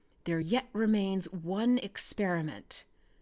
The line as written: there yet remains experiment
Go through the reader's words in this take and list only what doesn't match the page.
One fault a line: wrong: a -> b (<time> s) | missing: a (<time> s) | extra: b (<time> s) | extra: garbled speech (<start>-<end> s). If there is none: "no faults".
extra: one (1.3 s)